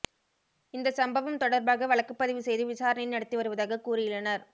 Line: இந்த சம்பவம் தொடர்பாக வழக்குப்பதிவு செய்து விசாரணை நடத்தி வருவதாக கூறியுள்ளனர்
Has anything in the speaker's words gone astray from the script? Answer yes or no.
no